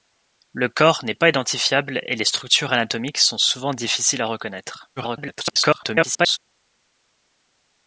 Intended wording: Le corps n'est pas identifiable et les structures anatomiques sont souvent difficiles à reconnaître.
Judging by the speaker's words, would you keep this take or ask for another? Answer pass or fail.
fail